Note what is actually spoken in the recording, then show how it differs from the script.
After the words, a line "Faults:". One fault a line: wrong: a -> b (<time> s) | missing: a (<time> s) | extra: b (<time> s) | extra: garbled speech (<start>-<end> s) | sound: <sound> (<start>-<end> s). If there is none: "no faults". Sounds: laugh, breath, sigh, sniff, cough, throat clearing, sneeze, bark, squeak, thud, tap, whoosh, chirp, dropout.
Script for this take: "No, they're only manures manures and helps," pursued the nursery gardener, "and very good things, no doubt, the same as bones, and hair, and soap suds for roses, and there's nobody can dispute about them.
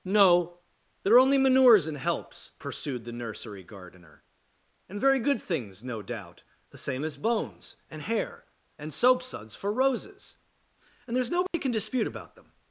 "No, they're only manures and helps," pursued the nursery gardener, "and very good things, no doubt, the same as bones, and hair, and soap suds for roses, and there's nobody can dispute about them.
Faults:
missing: manures (1.9 s)
sound: dropout (11.5-11.5 s)